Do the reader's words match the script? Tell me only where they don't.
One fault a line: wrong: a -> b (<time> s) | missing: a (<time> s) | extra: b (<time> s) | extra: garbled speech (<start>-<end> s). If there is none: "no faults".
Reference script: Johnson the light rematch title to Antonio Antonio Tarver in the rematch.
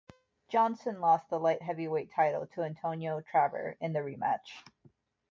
extra: lost (1.0 s)
wrong: rematch -> heavyweight (1.6 s)
missing: Antonio (3.2 s)